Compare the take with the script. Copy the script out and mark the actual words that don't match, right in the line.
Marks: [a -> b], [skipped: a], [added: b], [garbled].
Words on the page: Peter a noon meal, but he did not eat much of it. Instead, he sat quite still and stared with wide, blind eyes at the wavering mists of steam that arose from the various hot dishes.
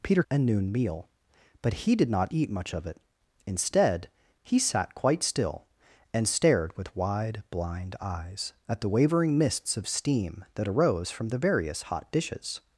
Peter a noon meal, but he did not eat much of it. Instead, he sat quite still and stared with wide, blind eyes at the wavering mists of steam that arose from the various hot dishes.